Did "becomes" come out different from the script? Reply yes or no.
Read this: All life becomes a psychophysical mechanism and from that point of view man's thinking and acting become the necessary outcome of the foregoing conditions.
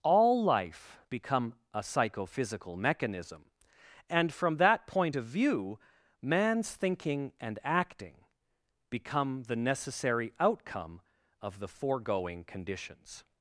yes